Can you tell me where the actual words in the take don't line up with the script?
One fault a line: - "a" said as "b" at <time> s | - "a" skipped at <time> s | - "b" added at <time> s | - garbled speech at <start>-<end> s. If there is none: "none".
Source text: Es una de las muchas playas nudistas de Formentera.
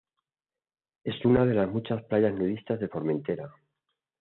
none